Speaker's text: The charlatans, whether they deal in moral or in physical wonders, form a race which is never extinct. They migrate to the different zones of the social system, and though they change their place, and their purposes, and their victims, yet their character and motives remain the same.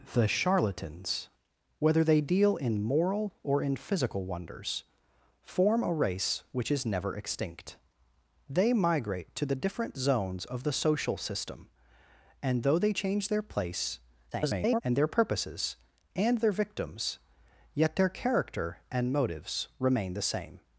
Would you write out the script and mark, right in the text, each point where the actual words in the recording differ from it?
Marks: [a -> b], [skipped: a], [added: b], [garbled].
The charlatans, whether they deal in moral or in physical wonders, form a race which is never extinct. They migrate to the different zones of the social system, and though they change their place, [garbled] and their purposes, and their victims, yet their character and motives remain the same.